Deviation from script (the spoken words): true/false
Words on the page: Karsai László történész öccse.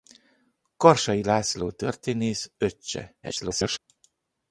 true